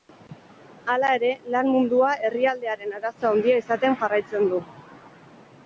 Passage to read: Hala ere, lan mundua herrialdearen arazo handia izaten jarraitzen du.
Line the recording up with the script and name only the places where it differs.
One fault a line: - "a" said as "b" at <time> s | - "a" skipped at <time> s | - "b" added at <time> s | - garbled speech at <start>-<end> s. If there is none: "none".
none